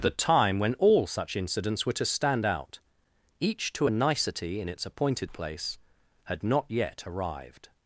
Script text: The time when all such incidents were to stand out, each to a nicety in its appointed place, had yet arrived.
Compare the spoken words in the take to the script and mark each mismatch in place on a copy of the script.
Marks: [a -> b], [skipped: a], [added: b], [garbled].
The time when all such incidents were to stand out, each to a nicety in its appointed place, had [added: not] yet arrived.